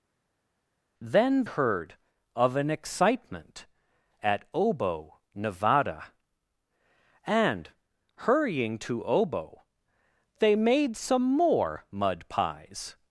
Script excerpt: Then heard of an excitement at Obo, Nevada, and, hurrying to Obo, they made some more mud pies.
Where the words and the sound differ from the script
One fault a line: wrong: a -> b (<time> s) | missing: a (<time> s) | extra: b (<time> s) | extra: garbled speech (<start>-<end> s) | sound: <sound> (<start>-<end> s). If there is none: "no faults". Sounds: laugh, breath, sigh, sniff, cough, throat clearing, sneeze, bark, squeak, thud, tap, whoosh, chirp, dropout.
no faults